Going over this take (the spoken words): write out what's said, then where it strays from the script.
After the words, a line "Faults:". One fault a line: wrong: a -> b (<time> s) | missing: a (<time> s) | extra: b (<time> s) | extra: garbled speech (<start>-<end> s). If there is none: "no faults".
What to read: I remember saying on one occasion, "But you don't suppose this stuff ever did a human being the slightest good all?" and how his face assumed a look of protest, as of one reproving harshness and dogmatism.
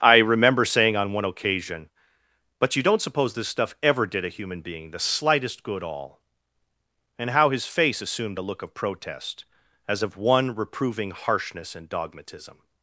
I remember saying on one occasion, "But you don't suppose this stuff ever did a human being the slightest good all?" and how his face assumed a look of protest, as of one reproving harshness and dogmatism.
Faults:
no faults